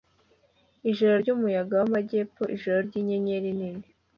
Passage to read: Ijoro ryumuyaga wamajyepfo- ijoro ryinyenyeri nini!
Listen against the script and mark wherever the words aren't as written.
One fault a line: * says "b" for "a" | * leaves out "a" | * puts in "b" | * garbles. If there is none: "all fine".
all fine